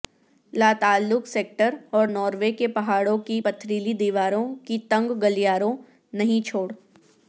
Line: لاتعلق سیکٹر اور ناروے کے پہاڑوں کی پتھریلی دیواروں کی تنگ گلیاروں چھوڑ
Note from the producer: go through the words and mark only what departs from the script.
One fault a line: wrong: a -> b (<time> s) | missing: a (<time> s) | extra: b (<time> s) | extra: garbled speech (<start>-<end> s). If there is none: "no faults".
extra: نہیں (6.1 s)